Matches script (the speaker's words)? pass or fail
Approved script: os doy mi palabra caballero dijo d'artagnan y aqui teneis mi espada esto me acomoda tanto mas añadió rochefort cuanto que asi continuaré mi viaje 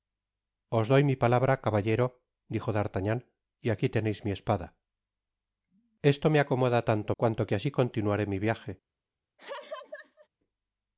fail